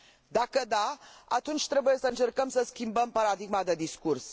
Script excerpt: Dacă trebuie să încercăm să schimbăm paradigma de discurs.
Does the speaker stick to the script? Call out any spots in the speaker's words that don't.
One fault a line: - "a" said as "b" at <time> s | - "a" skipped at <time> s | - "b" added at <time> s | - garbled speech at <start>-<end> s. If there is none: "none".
- "da atunci" added at 0.7 s